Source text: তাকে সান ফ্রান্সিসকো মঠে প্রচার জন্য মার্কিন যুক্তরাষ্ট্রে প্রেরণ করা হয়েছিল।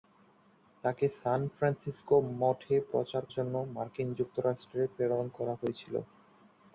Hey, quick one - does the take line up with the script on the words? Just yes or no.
yes